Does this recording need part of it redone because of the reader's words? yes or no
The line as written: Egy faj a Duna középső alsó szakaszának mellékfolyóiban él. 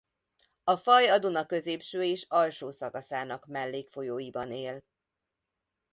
yes